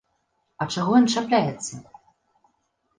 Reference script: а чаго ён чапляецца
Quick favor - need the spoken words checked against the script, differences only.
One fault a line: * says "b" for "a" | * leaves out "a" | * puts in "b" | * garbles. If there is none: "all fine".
all fine